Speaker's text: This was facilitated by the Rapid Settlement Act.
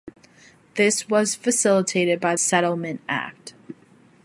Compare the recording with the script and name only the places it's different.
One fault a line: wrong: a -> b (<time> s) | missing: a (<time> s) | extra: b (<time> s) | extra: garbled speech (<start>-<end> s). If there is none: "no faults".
missing: the Rapid (2.4 s)